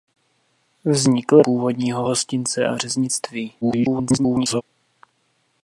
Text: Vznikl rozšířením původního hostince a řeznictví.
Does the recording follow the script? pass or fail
fail